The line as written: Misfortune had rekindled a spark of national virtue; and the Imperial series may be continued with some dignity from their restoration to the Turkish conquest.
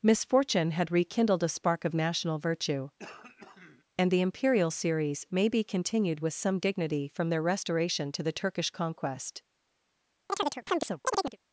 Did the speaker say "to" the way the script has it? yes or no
yes